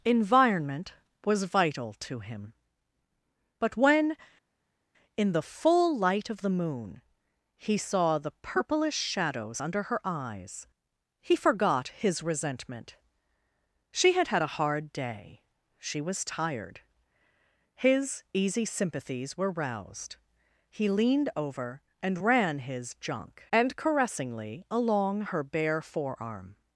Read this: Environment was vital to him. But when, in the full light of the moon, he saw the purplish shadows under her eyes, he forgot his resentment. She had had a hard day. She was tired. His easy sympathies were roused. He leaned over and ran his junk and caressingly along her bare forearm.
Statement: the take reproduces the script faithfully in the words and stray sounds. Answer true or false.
true